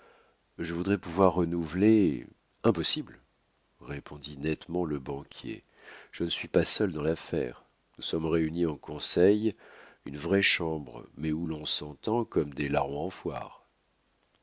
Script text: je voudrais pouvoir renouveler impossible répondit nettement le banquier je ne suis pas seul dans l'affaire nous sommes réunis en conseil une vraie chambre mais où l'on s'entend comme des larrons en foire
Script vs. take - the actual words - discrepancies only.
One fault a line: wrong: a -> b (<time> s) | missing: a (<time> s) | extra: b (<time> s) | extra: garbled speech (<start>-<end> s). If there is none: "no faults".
no faults